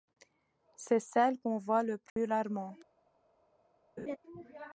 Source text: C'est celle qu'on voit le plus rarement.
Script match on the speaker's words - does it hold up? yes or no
yes